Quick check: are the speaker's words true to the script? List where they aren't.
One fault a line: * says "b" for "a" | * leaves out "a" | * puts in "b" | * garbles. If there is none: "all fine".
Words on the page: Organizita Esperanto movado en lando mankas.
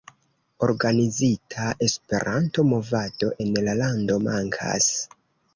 * puts in "la"